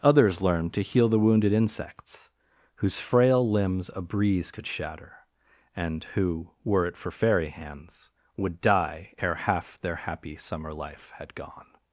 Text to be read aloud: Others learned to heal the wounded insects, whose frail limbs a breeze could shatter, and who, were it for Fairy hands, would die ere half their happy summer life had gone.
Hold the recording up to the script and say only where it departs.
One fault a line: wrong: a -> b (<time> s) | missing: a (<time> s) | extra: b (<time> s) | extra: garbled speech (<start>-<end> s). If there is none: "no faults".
no faults